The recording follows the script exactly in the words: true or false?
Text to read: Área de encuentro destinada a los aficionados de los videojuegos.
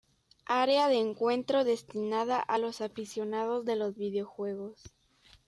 true